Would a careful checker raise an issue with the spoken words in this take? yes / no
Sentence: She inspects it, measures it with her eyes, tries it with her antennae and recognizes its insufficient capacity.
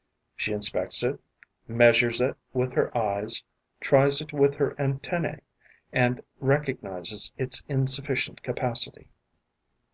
no